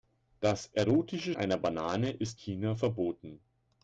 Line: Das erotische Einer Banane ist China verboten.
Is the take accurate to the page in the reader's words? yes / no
yes